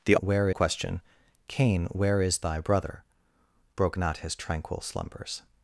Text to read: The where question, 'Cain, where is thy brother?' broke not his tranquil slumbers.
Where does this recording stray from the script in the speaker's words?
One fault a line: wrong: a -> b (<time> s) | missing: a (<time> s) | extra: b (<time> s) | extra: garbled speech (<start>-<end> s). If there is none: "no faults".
no faults